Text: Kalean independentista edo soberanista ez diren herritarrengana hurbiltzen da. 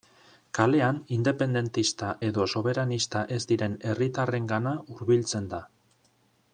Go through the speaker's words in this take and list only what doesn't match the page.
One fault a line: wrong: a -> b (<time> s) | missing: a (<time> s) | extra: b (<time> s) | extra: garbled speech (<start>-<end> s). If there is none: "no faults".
no faults